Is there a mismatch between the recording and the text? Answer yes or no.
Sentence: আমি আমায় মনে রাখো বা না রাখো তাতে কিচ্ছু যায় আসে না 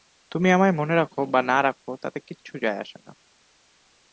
yes